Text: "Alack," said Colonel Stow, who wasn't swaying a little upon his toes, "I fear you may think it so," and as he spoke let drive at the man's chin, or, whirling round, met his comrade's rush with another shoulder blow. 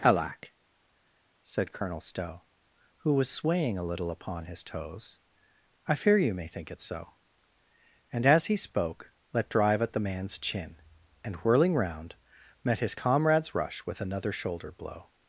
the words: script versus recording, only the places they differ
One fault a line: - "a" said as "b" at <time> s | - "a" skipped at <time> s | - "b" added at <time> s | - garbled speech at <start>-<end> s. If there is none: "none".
- "wasn't" said as "was" at 3.1 s
- "or" said as "and" at 11.2 s